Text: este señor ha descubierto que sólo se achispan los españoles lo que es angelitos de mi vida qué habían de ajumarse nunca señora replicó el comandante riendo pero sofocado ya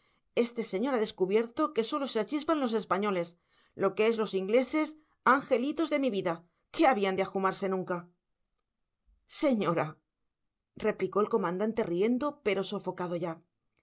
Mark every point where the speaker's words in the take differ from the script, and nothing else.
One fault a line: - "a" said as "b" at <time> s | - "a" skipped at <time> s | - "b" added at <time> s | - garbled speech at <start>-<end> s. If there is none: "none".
- "los ingleses" added at 4.2 s